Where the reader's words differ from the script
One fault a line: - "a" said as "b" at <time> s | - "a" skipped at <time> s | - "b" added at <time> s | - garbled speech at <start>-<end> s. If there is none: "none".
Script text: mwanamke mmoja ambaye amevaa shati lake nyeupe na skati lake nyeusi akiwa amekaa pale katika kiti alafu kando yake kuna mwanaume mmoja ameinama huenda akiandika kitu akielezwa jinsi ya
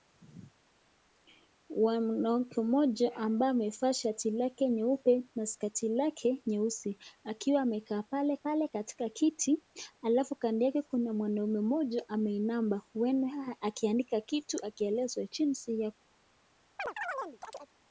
- "pale" added at 8.4 s